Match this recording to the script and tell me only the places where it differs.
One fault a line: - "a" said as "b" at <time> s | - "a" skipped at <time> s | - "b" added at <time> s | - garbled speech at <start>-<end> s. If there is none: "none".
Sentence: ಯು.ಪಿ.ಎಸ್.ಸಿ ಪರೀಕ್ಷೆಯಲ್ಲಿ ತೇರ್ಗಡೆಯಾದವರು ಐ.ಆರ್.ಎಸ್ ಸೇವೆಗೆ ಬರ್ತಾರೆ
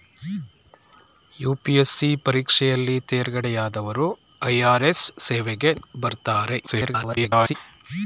- garbled speech at 6.7-7.5 s